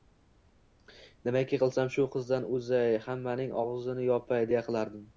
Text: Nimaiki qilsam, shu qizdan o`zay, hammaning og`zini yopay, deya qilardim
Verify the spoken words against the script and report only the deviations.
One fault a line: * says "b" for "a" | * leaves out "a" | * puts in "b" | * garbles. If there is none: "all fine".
all fine